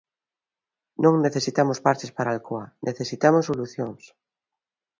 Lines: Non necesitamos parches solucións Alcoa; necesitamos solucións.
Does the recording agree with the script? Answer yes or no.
no